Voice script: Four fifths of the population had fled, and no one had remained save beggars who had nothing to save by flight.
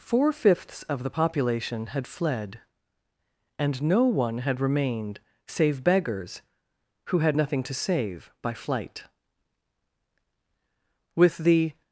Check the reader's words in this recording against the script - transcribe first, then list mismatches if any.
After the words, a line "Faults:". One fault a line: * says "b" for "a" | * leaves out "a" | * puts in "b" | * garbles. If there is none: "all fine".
Four fifths of the population had fled, and no one had remained save beggars who had nothing to save by flight. With the
Faults:
* puts in "With the"